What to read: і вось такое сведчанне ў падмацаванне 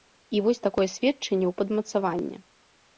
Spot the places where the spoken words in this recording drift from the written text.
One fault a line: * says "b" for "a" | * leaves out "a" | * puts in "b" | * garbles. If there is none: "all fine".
all fine